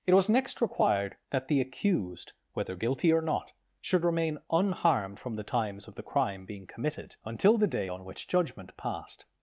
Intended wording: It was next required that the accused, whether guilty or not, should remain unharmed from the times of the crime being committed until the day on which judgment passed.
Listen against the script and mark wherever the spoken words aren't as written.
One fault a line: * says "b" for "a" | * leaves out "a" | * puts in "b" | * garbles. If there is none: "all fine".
all fine